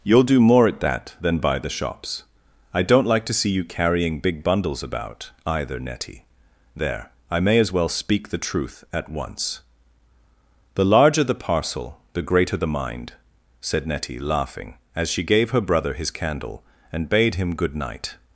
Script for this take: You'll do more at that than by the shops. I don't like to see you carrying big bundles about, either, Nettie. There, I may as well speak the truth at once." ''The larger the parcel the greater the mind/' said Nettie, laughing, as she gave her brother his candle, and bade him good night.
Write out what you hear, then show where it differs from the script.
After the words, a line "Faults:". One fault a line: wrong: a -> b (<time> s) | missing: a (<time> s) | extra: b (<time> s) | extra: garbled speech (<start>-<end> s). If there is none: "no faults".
You'll do more at that than by the shops. I don't like to see you carrying big bundles about, either, Nettie. There, I may as well speak the truth at once." ''The larger the parcel the greater the mind/' said Nettie, laughing, as she gave her brother his candle, and bade him good night.
Faults:
no faults